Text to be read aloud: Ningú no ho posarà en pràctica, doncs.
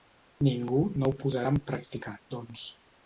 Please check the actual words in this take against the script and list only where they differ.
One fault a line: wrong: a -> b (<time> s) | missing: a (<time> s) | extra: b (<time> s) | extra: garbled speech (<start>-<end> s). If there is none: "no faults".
no faults